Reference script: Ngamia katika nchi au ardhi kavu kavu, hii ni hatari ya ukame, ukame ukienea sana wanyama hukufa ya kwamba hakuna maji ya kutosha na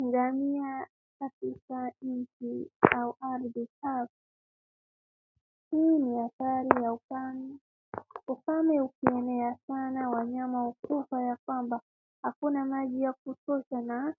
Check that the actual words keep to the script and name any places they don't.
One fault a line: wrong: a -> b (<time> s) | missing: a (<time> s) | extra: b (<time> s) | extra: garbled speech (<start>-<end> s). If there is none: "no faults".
missing: kavu (4.1 s)